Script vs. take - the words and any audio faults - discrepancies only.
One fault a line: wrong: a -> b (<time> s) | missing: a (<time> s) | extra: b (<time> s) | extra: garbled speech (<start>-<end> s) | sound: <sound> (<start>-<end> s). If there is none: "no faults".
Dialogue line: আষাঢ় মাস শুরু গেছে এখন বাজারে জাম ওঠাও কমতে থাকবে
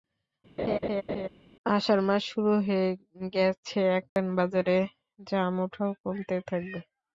sound: laugh (0.6-1.3 s)
extra: হয়ে (2.7 s)
sound: dropout (4.1-4.2 s)